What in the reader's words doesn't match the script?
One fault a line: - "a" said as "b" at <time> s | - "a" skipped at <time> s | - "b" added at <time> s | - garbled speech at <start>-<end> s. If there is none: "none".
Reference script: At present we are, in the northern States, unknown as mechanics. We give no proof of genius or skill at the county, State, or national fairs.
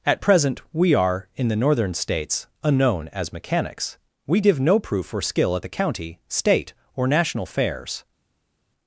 - "of genius" skipped at 5.1 s